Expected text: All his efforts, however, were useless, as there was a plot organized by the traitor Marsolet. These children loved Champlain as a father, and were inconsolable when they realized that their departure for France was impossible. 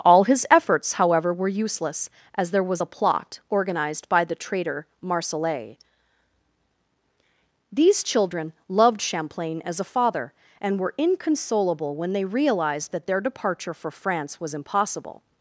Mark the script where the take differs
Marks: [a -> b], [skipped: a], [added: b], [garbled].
All his efforts, however, were useless, as there was a plot organized by the traitor Marsolet. These children loved Champlain as a father, and were inconsolable when they realized that their departure for France was impossible.